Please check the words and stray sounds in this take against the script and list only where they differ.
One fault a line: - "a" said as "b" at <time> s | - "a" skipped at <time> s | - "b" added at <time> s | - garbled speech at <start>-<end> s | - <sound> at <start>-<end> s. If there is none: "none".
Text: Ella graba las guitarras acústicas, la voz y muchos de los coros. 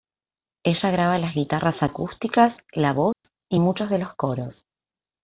- dropout at 3.1-3.2 s